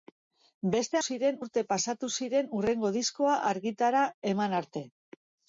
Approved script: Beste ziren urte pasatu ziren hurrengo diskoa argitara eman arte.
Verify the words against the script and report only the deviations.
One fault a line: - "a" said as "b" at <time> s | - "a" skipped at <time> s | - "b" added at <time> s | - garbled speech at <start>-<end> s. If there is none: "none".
none